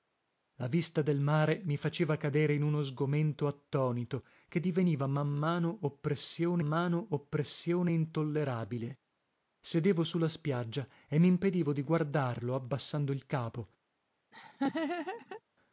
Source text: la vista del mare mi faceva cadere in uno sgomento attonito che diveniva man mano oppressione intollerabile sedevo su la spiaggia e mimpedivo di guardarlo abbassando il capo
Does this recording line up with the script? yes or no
no